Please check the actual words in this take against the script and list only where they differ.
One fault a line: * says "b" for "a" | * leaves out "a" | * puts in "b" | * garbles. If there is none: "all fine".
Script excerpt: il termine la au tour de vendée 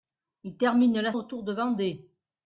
all fine